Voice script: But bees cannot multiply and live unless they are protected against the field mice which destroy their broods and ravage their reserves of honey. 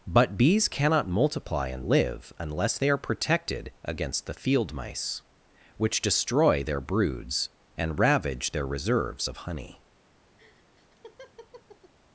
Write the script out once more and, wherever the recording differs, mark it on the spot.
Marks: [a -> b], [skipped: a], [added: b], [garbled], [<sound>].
But bees cannot multiply and live unless they are protected against the field mice which destroy their broods and ravage their reserves of honey. [laugh]